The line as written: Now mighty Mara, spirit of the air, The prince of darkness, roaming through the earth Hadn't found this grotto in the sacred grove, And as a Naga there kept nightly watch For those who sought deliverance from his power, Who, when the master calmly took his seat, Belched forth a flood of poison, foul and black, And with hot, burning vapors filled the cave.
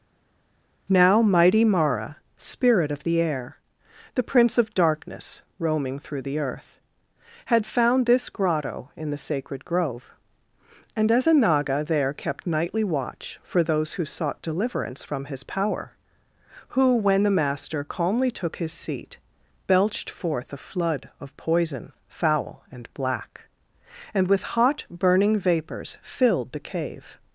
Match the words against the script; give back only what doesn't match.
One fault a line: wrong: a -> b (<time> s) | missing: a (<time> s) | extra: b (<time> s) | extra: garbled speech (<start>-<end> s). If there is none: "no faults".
wrong: Hadn't -> Had (7.5 s)